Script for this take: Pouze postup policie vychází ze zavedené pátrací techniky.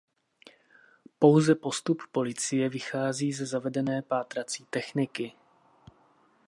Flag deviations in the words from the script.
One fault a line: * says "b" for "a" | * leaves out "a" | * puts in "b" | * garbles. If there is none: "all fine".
all fine